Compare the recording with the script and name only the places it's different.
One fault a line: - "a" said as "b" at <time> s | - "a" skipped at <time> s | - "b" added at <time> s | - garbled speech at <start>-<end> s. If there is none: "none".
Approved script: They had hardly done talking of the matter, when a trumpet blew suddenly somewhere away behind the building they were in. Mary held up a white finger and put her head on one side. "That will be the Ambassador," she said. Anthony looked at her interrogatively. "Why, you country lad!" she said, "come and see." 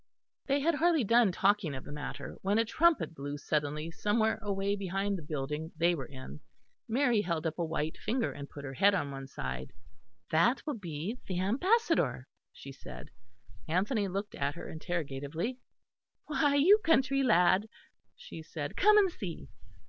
none